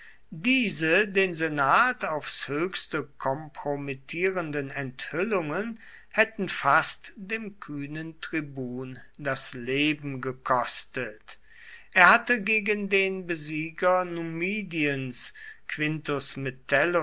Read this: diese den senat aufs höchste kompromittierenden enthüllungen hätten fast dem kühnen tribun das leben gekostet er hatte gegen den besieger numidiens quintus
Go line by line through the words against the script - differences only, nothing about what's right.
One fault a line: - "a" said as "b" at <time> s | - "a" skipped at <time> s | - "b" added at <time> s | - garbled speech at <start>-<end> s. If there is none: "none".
none